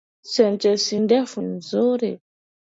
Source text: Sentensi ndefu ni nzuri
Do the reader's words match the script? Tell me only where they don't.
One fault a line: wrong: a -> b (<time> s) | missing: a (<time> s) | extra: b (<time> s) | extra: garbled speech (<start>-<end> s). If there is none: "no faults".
missing: ni (1.4 s)